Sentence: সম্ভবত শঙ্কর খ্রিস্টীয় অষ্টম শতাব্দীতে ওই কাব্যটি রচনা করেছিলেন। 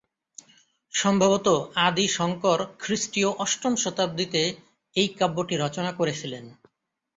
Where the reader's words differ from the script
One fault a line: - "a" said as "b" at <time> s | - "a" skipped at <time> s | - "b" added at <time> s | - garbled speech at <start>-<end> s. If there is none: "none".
- "আদি" added at 1.9 s
- "ওই" said as "এই" at 4.9 s